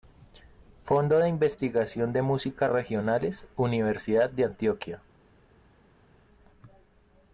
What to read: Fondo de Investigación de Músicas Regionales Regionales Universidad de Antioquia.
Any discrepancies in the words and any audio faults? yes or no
yes